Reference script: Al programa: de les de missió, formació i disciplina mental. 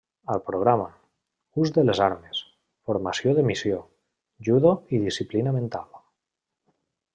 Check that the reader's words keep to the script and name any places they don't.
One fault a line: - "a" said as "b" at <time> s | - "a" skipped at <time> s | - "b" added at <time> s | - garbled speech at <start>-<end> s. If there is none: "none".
- "ús" added at 1.6 s
- "armes formació" added at 2.0 s
- "formació" said as "judo" at 4.5 s